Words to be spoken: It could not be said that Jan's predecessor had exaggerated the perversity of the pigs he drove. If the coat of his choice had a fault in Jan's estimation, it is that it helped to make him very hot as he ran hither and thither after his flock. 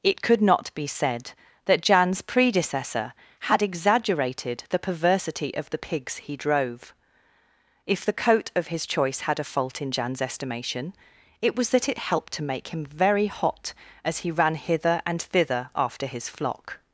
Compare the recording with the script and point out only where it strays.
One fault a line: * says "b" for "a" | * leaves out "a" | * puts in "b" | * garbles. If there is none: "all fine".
* says "was" for "is"